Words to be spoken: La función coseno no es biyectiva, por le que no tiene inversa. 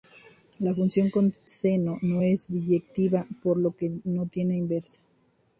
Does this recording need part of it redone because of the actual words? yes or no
yes